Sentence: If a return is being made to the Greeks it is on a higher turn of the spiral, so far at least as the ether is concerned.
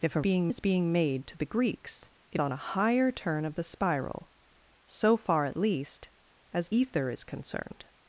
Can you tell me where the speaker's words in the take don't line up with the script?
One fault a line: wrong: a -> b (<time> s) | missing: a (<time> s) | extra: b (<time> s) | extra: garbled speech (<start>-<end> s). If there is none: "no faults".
wrong: return -> being (0.2 s)
missing: is (2.4 s)
missing: the (6.7 s)